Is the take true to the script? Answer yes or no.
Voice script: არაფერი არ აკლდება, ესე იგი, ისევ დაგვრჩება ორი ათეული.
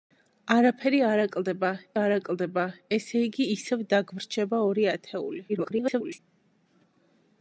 no